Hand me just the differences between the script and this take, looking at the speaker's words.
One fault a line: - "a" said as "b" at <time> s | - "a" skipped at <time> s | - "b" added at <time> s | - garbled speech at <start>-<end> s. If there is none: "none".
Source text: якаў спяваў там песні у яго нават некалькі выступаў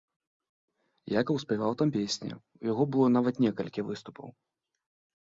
- "было" added at 2.9 s